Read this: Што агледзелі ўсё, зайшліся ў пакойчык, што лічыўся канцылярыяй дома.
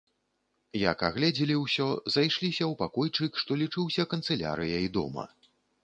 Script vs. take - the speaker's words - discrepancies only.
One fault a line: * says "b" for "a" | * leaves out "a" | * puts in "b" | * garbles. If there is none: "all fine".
* says "Як" for "Што"